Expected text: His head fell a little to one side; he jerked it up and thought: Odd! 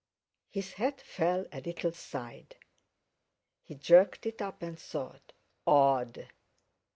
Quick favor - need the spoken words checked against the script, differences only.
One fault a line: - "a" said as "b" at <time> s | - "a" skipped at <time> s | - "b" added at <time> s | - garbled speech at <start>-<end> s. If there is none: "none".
- "to one" skipped at 1.9 s